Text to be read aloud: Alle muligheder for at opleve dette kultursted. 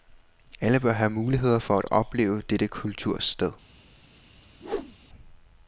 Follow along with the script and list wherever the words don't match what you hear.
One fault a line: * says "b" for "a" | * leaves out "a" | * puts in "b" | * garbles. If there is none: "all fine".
* puts in "bør have"